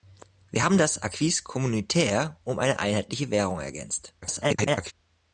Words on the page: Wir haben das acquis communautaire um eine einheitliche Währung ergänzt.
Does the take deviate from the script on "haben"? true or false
false